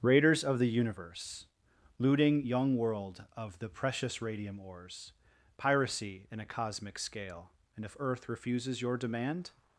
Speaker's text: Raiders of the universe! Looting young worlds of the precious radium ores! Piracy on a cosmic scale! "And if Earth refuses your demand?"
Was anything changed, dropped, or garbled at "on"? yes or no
yes